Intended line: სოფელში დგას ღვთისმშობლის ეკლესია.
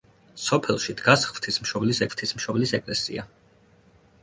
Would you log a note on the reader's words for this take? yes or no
yes